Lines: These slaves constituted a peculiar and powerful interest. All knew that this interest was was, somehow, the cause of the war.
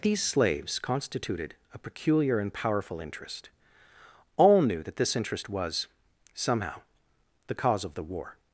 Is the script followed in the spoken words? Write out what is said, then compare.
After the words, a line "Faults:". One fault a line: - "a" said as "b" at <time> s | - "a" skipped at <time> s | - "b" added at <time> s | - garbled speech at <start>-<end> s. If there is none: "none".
These slaves constituted a peculiar and powerful interest. All knew that this interest was, somehow, the cause of the war.
Faults:
- "was" skipped at 5.9 s